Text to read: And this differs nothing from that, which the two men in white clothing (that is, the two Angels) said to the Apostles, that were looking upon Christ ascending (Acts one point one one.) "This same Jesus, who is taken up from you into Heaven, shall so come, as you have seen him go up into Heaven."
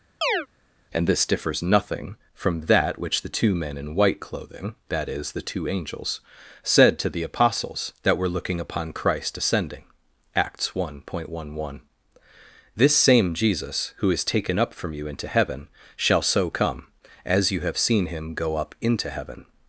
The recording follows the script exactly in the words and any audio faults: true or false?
false